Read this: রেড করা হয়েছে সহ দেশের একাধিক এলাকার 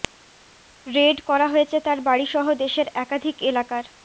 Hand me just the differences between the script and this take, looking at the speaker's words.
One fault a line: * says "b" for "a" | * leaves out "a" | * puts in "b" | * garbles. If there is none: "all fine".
* puts in "তার বাড়ি"